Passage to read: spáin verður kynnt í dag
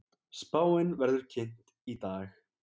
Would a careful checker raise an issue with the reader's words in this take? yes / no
no